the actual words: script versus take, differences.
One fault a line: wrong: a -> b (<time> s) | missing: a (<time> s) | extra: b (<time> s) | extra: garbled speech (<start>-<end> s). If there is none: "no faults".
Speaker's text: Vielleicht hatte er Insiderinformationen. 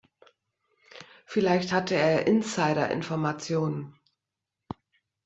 no faults